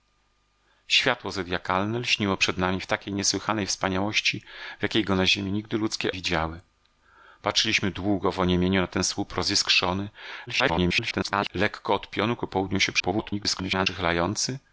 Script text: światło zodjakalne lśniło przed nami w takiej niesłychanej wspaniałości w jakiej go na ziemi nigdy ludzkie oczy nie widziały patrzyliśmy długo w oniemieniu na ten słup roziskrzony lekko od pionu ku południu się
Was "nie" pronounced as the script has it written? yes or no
no